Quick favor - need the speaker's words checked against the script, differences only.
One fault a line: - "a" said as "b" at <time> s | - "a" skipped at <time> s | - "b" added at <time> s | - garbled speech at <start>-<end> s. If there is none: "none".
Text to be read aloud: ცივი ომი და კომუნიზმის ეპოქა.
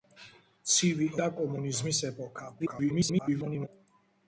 - "ომი" skipped at 1.1 s
- garbled speech at 2.6-3.7 s